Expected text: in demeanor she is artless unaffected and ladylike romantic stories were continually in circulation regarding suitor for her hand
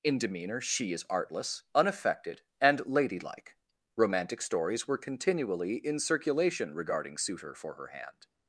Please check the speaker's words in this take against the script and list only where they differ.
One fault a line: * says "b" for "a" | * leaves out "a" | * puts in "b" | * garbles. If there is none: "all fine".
all fine